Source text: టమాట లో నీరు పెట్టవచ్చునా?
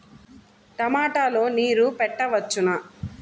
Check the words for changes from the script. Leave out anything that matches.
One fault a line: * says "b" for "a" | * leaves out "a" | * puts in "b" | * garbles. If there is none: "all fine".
all fine